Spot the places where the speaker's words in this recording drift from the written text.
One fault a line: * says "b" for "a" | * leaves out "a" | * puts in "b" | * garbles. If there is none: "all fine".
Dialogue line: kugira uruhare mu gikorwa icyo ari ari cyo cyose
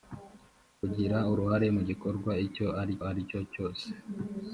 all fine